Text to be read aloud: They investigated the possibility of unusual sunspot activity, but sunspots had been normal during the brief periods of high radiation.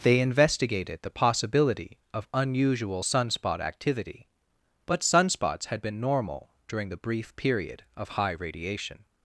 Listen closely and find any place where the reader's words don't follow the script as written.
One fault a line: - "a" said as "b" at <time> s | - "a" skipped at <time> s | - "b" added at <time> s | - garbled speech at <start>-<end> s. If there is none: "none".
- "periods" said as "period" at 7.4 s